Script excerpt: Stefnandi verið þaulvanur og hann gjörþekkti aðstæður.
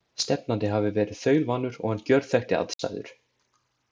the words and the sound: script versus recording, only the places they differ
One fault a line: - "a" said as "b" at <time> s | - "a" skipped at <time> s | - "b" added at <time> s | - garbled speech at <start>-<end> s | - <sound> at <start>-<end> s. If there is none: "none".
- "hafi" added at 0.8 s
- dropout at 2.7-2.8 s